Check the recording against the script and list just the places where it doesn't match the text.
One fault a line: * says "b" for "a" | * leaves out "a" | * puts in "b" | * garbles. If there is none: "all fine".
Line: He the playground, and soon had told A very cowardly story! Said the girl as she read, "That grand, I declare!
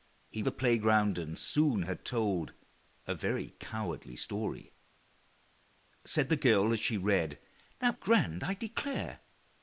all fine